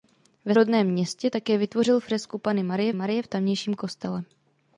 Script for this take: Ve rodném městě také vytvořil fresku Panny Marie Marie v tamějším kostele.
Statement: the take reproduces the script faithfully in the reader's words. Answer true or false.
true